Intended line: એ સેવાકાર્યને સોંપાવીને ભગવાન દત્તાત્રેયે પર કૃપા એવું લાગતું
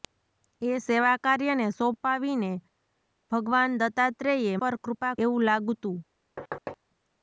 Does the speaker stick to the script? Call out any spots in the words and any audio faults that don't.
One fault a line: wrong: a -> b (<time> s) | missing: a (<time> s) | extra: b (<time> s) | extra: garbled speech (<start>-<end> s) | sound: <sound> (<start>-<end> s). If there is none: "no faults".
sound: thud (6.4-6.8 s)